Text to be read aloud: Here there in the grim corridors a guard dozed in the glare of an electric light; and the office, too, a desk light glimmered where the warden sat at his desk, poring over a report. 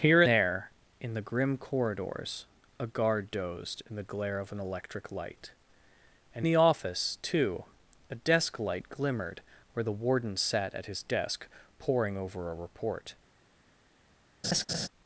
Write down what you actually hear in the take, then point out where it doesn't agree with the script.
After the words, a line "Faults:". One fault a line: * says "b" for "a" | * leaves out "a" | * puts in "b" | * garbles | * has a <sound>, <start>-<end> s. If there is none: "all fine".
Here there in the grim corridors a guard dozed in the glare of an electric light; and the office, too, a desk light glimmered where the warden sat at his desk, poring over a report.
Faults:
* has a laugh, 14.4-14.9 s